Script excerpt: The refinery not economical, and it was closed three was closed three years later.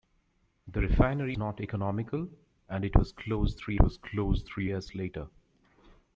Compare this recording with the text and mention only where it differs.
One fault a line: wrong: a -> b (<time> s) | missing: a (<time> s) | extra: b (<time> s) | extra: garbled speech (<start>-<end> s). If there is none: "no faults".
no faults